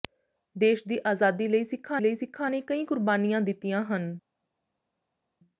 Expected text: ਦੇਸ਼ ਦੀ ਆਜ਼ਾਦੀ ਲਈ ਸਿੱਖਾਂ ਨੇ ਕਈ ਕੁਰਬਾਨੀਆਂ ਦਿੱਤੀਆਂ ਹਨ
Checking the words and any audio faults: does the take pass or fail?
fail